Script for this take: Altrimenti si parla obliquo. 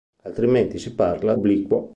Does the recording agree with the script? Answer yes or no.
yes